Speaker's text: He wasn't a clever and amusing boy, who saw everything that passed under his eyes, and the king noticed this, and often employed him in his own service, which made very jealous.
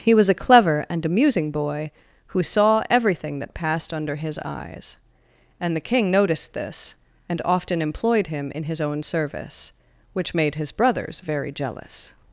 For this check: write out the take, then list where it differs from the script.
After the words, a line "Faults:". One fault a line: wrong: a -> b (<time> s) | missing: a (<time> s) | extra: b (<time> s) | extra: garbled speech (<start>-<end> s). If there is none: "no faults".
He was a clever and amusing boy, who saw everything that passed under his eyes, and the king noticed this, and often employed him in his own service, which made his brothers very jealous.
Faults:
wrong: wasn't -> was (0.1 s)
extra: his brothers (10.5 s)